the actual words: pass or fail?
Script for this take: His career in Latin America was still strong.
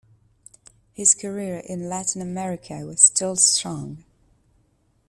pass